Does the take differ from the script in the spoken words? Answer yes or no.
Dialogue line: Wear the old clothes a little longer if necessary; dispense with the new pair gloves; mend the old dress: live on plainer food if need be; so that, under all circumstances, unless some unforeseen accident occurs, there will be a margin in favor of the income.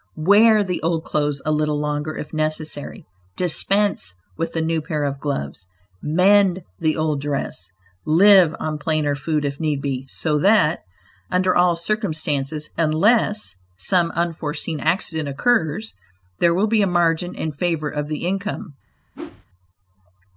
yes